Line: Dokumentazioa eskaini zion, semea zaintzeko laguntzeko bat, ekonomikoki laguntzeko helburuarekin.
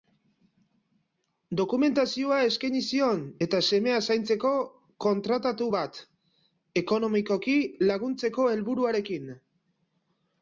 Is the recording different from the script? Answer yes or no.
yes